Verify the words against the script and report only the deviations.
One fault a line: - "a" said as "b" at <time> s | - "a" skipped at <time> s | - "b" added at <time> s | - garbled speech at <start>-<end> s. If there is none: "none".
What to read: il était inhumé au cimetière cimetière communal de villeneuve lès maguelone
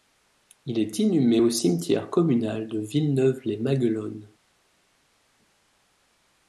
- "était" said as "est" at 0.8 s
- "cimetière" skipped at 2.1 s